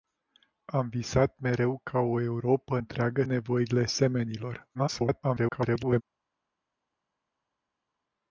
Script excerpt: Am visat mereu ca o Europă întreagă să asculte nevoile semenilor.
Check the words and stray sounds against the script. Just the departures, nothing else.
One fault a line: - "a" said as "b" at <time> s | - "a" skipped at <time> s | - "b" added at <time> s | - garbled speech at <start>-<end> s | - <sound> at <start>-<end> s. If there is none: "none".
- "să asculte" skipped at 3.2 s
- garbled speech at 4.7-6.0 s